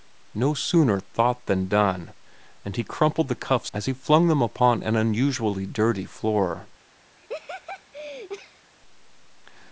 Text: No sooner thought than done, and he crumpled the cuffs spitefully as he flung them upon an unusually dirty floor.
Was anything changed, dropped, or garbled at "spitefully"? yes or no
yes